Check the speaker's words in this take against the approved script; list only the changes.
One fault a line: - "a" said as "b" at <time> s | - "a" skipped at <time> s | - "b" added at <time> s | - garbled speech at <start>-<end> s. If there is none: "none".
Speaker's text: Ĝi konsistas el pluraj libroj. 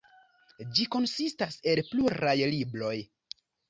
none